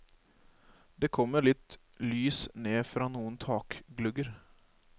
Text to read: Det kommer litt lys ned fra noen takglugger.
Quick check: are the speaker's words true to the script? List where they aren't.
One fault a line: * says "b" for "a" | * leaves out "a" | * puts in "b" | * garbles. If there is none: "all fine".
all fine